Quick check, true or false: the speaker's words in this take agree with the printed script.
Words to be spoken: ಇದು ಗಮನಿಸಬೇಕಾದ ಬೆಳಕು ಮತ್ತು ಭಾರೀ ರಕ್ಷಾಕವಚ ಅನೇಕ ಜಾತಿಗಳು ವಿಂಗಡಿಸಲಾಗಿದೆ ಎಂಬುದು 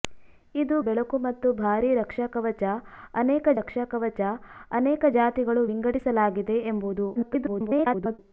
false